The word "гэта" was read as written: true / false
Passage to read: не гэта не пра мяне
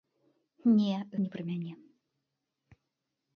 false